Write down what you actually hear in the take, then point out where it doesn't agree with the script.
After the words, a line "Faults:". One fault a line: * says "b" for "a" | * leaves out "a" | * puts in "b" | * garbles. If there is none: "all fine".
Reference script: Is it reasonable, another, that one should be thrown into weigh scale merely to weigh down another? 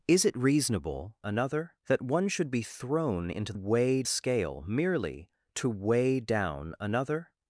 Is it reasonable, another, that one should be thrown into weigh scale merely to weigh down another?
Faults:
all fine